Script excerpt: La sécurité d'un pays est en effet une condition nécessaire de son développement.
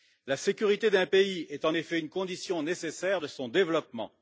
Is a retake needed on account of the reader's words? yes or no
no